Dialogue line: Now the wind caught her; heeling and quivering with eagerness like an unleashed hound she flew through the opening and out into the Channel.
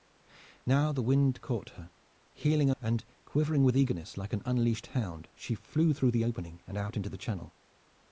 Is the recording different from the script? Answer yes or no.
no